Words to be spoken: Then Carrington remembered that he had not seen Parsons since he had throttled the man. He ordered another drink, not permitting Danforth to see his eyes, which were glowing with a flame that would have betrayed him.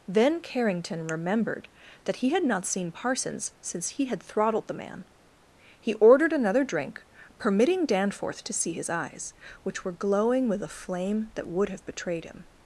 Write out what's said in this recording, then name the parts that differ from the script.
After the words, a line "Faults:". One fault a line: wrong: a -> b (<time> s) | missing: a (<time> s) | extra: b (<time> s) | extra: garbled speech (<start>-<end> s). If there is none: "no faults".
Then Carrington remembered that he had not seen Parsons since he had throttled the man. He ordered another drink, permitting Danforth to see his eyes, which were glowing with a flame that would have betrayed him.
Faults:
missing: not (7.0 s)